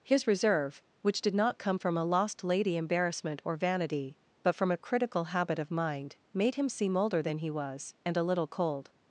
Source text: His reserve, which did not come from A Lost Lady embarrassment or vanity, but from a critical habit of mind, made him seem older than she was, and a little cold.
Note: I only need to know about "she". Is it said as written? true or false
false